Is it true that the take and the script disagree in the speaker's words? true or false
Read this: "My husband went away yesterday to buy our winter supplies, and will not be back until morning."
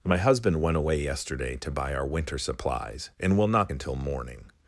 true